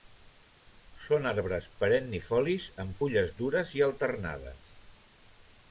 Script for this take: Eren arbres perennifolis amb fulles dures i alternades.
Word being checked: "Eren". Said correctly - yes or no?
no